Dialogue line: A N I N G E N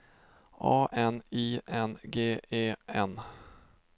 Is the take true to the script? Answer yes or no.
yes